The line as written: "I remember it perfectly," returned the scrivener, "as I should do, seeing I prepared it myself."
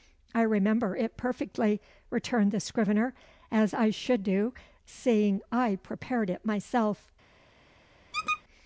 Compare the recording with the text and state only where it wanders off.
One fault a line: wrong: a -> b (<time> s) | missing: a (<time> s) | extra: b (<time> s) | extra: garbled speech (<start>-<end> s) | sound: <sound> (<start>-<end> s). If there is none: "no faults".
sound: squeak (8.1-8.4 s)